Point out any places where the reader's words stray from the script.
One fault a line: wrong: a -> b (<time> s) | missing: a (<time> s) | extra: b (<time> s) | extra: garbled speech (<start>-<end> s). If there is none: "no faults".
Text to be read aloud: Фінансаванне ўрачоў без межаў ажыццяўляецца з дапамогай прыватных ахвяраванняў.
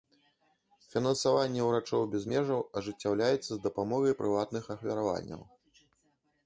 no faults